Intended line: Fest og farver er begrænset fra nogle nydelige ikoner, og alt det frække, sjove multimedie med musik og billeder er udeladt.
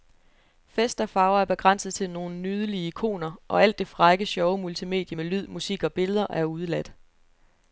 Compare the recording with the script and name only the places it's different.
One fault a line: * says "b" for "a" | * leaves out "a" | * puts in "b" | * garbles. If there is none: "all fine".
* says "til" for "fra"
* puts in "lyd"